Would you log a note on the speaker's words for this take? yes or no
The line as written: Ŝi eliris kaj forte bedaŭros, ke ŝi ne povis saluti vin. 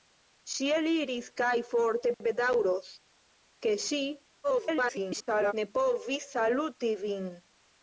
yes